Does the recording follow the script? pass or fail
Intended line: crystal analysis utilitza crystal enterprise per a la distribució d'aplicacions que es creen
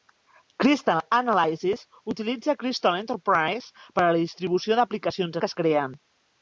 pass